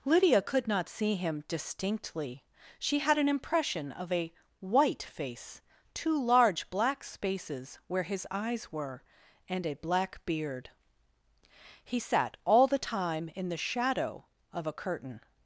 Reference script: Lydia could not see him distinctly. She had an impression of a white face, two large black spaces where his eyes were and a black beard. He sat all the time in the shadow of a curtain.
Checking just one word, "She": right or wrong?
right